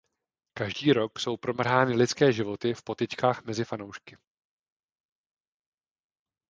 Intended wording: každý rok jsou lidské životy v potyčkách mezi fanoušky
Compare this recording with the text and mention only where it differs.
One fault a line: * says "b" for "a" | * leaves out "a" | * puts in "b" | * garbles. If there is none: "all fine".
* puts in "promrhány"